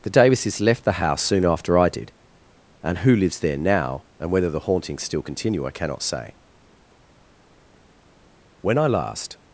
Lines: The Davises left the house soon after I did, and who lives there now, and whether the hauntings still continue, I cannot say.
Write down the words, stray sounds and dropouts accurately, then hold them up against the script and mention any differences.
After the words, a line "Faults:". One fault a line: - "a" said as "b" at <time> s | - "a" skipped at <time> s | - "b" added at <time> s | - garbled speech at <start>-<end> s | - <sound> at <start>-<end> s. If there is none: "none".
The Davises left the house soon after I did, and who lives there now, and whether the hauntings still continue, I cannot say. When I last
Faults:
- "When I last" added at 8.6 s